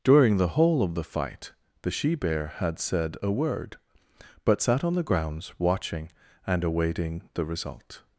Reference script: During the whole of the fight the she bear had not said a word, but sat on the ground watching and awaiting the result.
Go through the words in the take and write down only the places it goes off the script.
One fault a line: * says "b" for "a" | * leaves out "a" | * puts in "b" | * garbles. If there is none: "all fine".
* leaves out "not"
* says "grounds" for "ground"